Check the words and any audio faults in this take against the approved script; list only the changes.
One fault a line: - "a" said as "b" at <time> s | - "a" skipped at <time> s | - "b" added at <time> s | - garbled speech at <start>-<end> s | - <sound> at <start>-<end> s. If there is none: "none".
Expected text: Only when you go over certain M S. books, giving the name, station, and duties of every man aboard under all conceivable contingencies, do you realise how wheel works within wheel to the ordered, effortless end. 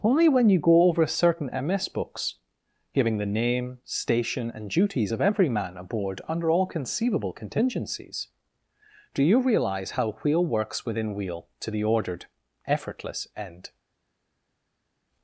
none